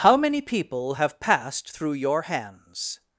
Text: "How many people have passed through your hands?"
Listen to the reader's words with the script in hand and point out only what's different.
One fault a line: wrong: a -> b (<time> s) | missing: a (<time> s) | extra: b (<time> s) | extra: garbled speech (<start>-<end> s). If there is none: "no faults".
no faults